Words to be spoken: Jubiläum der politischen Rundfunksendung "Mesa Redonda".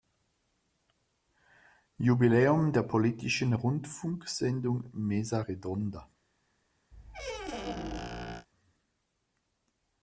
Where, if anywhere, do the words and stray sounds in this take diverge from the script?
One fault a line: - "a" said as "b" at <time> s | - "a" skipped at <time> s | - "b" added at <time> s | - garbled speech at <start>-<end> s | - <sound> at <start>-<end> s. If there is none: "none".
- squeak at 6.9-8.5 s